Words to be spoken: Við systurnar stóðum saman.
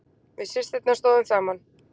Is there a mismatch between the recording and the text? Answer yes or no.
no